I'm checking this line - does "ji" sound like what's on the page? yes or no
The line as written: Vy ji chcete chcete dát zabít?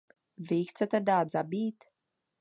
yes